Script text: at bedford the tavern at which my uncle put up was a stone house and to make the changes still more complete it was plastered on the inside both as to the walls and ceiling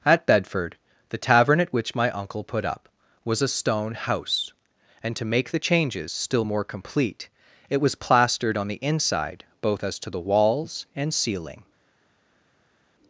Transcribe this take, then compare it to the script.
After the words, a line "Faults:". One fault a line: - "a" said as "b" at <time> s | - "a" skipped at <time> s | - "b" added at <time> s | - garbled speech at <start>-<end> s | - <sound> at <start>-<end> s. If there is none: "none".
at bedford the tavern at which my uncle put up was a stone house and to make the changes still more complete it was plastered on the inside both as to the walls and ceiling
Faults:
none